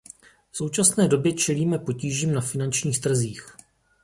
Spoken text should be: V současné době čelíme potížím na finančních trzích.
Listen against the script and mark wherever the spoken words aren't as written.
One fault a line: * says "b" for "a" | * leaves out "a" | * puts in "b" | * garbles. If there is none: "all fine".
all fine